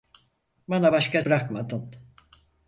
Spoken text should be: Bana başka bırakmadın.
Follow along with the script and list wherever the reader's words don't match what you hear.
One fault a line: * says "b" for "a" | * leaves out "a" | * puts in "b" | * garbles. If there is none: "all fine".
all fine